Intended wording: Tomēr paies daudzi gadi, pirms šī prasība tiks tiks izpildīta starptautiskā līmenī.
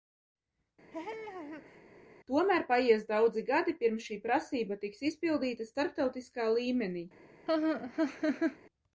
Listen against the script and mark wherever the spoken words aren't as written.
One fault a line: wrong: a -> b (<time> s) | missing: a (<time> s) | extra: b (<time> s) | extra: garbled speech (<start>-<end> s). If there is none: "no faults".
missing: tiks (5.0 s)